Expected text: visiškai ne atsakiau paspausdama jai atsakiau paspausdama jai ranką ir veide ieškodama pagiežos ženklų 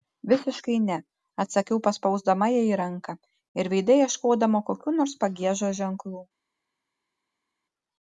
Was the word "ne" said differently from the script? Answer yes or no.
no